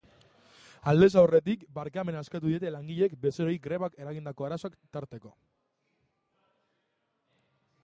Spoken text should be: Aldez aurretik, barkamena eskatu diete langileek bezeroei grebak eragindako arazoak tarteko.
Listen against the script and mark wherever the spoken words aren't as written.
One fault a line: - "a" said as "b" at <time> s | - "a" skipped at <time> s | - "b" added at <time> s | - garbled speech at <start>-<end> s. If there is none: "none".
none